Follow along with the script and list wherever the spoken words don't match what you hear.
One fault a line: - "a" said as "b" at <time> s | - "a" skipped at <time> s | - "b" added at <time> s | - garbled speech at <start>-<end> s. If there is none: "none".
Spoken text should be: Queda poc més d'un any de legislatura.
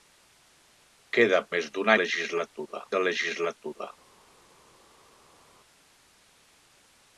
- "poc" skipped at 1.4 s
- "any" said as "legislatura" at 2.0 s